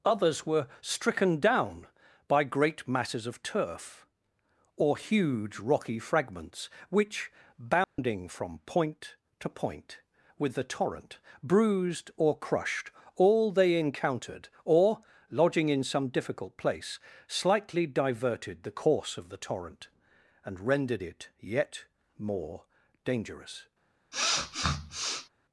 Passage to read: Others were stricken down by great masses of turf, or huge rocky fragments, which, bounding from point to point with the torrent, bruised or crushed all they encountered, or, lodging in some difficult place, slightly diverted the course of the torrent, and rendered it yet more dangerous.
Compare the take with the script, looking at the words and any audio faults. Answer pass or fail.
fail